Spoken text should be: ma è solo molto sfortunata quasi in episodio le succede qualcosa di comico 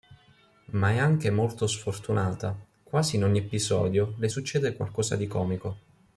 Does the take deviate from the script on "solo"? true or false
true